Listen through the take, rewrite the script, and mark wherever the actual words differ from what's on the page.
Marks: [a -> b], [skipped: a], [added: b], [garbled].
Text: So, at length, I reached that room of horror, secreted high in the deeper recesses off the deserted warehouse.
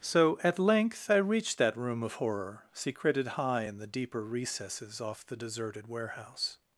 So, at length, I reached that room of horror, secreted high in the deeper recesses off the deserted warehouse.